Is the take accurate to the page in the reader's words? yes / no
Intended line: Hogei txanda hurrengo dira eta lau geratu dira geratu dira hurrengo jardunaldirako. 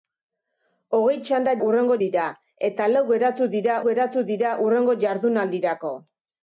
yes